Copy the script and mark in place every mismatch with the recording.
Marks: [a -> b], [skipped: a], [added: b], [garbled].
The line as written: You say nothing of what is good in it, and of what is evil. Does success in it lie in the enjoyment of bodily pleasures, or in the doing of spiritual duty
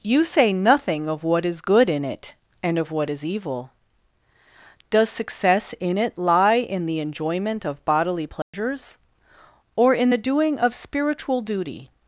You say nothing of what is good in it, and of what is evil. Does success in it lie in the enjoyment of bodily pleasures, or in the doing of spiritual duty